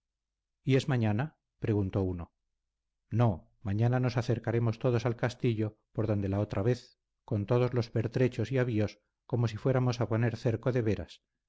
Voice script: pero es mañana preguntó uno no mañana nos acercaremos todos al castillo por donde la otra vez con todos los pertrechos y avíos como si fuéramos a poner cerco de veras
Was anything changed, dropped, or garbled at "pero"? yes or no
yes